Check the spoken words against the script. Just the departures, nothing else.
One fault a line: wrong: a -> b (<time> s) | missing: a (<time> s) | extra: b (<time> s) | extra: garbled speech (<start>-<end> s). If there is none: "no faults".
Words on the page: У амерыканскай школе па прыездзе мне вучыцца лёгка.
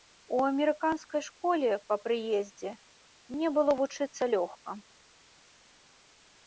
extra: было (3.6 s)